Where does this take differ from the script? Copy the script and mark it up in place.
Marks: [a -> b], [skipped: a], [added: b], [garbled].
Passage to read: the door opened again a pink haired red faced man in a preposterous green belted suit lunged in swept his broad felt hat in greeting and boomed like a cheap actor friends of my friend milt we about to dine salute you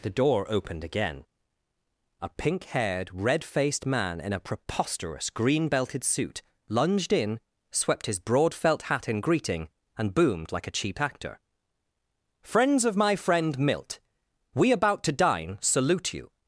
the door opened again a pink haired red faced man in a preposterous green belted suit lunged in swept his broad felt hat in greeting and boomed like a cheap actor friends of my friend milt we about to dine salute you